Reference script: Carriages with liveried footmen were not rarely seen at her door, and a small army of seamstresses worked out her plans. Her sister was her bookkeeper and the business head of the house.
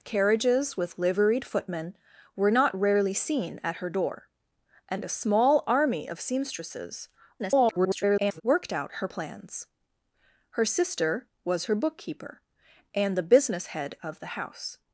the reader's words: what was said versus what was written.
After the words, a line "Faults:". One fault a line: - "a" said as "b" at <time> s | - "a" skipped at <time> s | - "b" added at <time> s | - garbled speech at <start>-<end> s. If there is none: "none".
Carriages with liveried footmen were not rarely seen at her door, and a small army of seamstresses [garbled] worked out her plans. Her sister was her bookkeeper and the business head of the house.
Faults:
- garbled speech at 7.4-8.4 s